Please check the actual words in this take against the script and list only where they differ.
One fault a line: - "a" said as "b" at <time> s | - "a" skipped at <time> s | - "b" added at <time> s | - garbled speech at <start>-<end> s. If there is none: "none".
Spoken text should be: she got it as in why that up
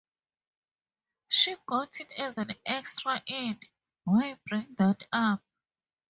- "an extra" added at 2.4 s
- "bring" added at 4.4 s